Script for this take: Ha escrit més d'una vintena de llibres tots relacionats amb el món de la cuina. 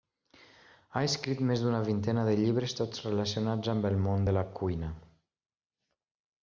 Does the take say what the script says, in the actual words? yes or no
yes